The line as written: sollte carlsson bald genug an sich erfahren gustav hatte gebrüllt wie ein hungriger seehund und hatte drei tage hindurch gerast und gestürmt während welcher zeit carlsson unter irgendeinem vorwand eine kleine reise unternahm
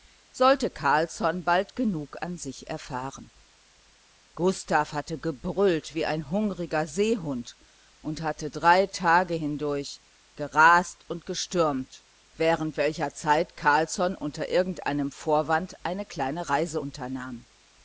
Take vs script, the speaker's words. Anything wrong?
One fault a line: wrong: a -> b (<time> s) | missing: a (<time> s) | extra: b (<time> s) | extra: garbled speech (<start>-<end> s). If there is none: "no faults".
no faults